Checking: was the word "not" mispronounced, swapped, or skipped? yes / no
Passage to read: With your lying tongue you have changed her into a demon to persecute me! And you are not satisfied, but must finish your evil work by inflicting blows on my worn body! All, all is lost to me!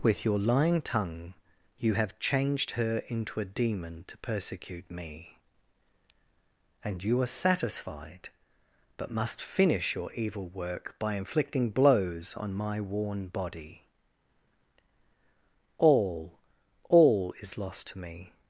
yes